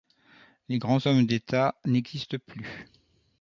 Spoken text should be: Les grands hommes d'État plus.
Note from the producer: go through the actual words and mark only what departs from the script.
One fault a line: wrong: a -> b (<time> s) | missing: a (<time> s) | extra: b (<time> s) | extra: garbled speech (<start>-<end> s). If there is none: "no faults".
extra: n'existent (1.8 s)